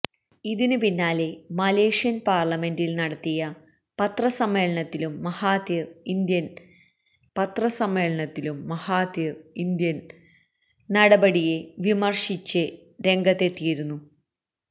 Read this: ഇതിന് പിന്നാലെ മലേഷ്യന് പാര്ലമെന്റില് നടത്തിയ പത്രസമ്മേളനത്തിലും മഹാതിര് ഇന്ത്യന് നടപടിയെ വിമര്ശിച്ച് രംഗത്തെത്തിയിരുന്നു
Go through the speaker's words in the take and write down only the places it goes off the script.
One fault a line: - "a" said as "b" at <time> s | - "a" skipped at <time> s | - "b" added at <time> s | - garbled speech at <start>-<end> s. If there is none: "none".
- "പത്രസമ്മേളനത്തിലും മഹാതിര് ഇന്ത്യന്" added at 7.4 s